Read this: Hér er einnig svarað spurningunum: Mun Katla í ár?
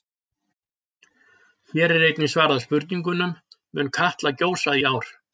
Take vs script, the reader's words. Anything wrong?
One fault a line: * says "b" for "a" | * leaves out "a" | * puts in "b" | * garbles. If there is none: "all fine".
* puts in "gjósa"